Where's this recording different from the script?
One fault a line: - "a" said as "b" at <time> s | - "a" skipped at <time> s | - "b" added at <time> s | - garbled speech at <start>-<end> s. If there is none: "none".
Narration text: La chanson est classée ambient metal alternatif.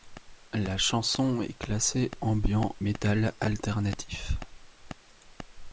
none